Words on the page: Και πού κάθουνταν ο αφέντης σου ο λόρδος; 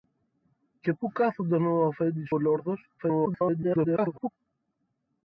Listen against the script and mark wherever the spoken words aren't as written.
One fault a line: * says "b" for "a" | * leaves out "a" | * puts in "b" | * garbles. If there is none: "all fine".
* leaves out "σου"
* garbles